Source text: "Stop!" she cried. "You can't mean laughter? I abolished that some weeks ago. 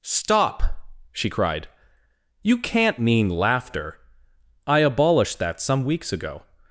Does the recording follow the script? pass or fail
pass